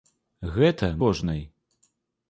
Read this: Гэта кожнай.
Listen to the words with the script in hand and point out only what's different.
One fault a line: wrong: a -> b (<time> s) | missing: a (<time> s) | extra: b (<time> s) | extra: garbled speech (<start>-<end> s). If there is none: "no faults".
no faults